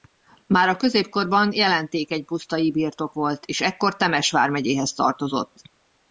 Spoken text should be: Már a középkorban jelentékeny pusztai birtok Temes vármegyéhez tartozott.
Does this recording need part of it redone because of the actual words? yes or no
yes